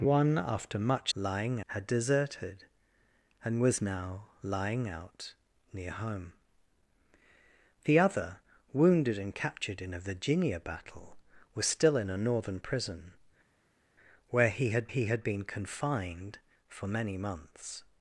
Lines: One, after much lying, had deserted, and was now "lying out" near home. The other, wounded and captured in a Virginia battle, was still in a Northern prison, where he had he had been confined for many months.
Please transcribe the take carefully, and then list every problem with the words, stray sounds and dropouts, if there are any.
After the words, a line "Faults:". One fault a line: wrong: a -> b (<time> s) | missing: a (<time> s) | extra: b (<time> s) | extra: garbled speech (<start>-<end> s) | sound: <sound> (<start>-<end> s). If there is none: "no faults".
One, after much lying, had deserted, and was now "lying out" near home. The other, wounded and captured in a Virginia battle, was still in a Northern prison, where he had he had been confined for many months.
Faults:
no faults